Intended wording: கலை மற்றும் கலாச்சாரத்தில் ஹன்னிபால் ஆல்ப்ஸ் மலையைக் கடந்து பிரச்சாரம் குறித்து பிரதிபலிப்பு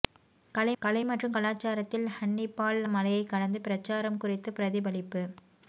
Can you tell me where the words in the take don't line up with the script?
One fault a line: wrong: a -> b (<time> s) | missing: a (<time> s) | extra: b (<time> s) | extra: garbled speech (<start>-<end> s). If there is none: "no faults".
extra: கலை (0.8 s)
missing: ஆல்ப்ஸ் (2.8 s)